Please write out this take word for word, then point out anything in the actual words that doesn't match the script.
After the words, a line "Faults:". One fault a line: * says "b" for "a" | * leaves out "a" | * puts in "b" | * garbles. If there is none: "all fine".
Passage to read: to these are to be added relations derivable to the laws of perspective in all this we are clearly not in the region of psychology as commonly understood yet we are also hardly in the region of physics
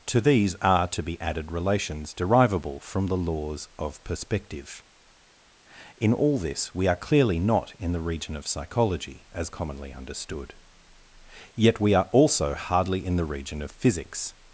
to these are to be added relations derivable from the laws of perspective in all this we are clearly not in the region of psychology as commonly understood yet we are also hardly in the region of physics
Faults:
* says "from" for "to"